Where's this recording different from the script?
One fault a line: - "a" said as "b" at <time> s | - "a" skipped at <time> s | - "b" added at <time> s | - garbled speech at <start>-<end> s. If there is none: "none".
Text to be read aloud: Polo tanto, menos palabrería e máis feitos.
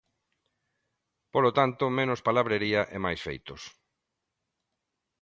none